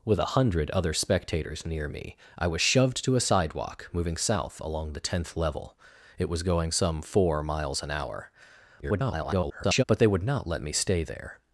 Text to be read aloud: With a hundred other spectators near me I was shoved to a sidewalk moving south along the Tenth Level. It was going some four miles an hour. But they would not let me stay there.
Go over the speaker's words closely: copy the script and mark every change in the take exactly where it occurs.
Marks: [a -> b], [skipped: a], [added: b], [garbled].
With a hundred other spectators near me I was shoved to a sidewalk moving south along the Tenth Level. It was going some four miles an hour. [garbled] But they would not let me stay there.